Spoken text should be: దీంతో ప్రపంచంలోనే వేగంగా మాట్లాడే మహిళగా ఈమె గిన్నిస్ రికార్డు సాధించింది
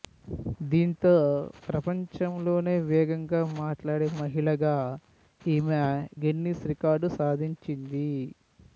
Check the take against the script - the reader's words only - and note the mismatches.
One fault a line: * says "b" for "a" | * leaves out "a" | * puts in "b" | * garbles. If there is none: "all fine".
all fine